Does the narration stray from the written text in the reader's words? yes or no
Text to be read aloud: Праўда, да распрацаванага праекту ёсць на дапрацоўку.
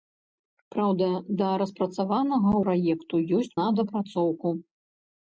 no